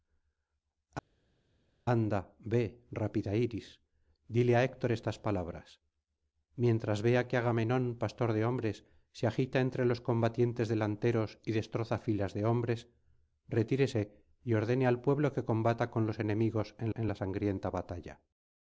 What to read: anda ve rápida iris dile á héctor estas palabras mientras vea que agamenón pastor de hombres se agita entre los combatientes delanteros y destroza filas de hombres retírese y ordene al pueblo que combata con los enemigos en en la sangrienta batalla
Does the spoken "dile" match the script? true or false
true